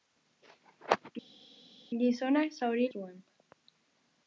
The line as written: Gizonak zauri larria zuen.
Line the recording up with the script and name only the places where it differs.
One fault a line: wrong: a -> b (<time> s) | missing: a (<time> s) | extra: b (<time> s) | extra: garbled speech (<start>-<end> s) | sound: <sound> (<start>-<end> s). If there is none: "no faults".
missing: larria (2.9 s)